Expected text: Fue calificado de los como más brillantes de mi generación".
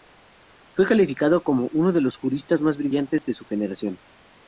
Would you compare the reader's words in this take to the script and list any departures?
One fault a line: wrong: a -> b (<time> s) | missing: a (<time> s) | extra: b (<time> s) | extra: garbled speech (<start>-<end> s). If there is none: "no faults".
extra: como uno (1.4 s)
wrong: como -> juristas (2.2 s)
wrong: mi -> su (3.3 s)